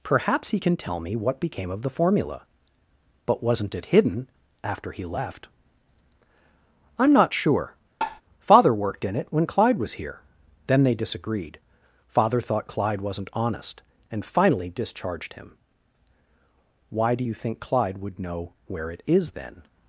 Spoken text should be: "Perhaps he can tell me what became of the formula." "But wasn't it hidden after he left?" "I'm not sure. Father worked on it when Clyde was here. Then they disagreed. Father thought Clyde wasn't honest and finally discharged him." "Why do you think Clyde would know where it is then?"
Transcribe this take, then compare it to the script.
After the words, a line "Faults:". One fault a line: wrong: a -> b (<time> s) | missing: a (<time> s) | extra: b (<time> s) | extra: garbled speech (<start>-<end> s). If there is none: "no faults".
"Perhaps he can tell me what became of the formula." "But wasn't it hidden after he left?" "I'm not sure. Father worked in it when Clyde was here. Then they disagreed. Father thought Clyde wasn't honest and finally discharged him." "Why do you think Clyde would know where it is then?"
Faults:
wrong: on -> in (9.0 s)